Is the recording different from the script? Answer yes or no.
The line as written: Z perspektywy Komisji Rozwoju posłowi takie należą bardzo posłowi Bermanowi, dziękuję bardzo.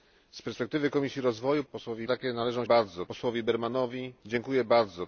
no